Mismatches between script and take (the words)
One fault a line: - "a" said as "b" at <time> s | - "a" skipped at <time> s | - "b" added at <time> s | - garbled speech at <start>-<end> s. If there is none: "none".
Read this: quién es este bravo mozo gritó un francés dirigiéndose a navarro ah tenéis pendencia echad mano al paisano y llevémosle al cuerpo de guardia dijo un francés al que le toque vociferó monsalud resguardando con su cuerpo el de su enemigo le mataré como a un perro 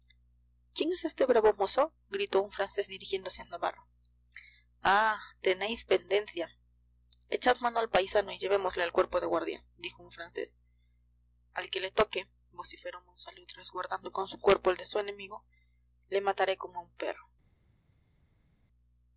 none